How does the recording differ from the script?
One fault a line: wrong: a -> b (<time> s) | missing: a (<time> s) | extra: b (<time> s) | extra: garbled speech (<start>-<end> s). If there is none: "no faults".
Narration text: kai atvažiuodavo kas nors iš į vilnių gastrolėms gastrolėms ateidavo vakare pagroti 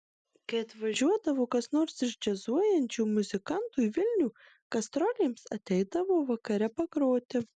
extra: džiazuojančių muzikantų (2.3 s)
missing: gastrolėms (5.5 s)